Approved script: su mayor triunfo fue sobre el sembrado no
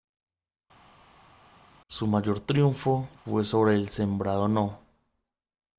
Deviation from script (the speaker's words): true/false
false